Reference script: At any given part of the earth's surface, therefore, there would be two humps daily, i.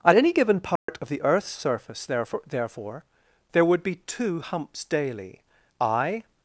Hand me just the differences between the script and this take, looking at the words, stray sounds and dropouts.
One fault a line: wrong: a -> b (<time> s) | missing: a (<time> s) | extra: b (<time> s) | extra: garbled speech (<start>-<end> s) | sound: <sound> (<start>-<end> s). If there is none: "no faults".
sound: dropout (0.8-0.9 s)
extra: therefore (2.5 s)